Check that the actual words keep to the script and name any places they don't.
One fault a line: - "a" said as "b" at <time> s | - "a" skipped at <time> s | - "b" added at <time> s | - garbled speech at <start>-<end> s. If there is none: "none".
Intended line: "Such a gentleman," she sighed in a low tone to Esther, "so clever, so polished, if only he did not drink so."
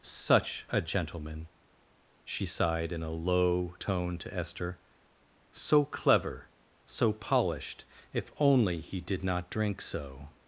none